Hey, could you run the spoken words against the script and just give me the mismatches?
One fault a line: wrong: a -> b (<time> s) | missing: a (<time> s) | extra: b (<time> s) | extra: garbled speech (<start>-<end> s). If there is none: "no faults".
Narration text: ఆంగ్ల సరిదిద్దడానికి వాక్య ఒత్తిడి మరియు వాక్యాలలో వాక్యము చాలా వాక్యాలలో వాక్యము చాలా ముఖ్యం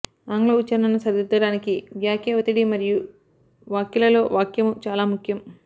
extra: ఉచ్ఛరణను (0.6 s)
missing: వాక్యాలలో వాక్యము చాలా (5.0 s)